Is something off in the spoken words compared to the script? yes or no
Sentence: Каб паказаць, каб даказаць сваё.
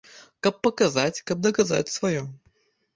no